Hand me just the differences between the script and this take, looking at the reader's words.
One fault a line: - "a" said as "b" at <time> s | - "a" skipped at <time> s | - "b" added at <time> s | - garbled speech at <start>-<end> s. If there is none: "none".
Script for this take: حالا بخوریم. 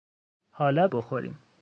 none